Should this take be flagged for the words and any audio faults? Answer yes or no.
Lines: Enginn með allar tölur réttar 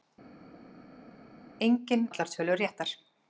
yes